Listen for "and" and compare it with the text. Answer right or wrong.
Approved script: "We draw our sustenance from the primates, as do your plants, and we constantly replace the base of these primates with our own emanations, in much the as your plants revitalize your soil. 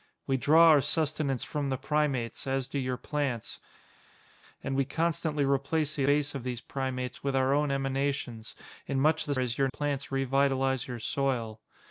right